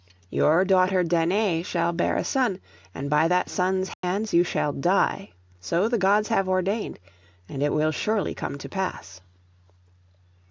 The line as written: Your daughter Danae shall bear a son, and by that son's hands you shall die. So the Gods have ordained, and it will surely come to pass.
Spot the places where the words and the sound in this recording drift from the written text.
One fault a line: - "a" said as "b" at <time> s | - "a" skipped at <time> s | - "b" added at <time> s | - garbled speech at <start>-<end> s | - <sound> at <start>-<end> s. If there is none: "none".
- dropout at 3.9-4.0 s